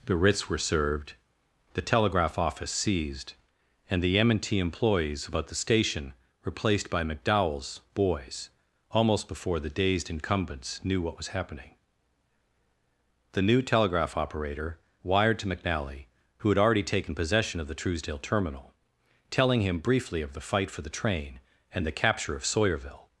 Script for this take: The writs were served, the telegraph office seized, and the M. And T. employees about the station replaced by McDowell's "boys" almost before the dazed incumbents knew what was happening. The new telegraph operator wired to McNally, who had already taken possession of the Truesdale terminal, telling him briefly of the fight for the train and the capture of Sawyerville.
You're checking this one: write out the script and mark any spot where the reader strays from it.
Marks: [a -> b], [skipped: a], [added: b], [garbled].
The writs were served, the telegraph office seized, and the M. And T. employees about the station replaced by McDowell's "boys" almost before the dazed incumbents knew what was happening. The new telegraph operator wired to McNally, who had already taken possession of the Truesdale terminal, telling him briefly of the fight for the train and the capture of Sawyerville.